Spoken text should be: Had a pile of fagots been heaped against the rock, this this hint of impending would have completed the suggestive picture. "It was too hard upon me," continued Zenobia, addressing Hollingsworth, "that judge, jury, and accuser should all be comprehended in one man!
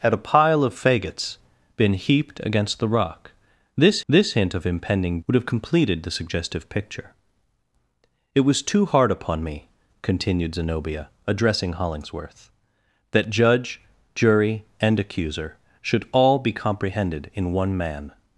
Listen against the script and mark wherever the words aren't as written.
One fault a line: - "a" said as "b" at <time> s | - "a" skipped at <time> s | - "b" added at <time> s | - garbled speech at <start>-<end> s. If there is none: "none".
none